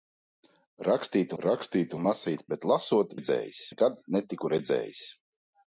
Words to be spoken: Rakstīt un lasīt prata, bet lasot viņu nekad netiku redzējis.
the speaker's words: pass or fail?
fail